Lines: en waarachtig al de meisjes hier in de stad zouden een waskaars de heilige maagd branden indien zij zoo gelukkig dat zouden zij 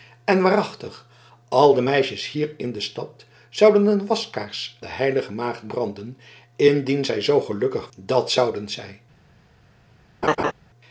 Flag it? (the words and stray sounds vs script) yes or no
yes